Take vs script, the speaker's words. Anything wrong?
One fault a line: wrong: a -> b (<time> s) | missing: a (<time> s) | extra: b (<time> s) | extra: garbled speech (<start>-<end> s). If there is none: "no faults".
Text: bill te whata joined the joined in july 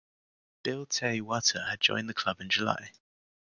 extra: had (1.7 s)
wrong: joined -> club (2.1 s)